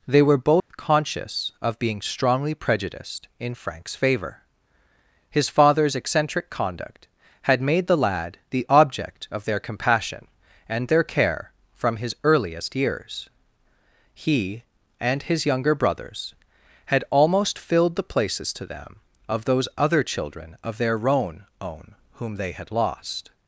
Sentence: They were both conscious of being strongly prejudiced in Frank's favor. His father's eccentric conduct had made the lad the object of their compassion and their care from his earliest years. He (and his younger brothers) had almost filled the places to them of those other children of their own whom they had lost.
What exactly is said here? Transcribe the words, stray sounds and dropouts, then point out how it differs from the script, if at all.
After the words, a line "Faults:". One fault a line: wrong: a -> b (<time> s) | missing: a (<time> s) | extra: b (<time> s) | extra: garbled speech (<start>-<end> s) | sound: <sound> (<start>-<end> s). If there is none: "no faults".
They were both conscious of being strongly prejudiced in Frank's favor. His father's eccentric conduct had made the lad the object of their compassion and their care from his earliest years. He (and his younger brothers) had almost filled the places to them of those other children of their own own whom they had lost.
Faults:
sound: dropout (0.6-0.7 s)
extra: own (21.6 s)